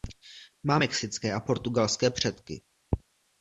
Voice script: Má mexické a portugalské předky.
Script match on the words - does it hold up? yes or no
yes